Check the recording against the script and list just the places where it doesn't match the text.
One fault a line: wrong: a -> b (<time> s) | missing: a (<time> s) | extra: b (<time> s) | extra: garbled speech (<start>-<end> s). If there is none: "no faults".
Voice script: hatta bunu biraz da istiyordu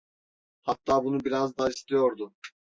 no faults